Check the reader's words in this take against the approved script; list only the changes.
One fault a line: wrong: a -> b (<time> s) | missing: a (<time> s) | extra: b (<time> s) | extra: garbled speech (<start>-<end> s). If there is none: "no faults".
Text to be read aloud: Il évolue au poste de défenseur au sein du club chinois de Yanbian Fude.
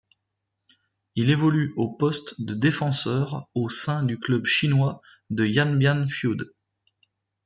no faults